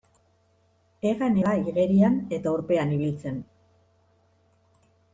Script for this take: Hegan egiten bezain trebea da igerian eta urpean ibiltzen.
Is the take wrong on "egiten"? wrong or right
wrong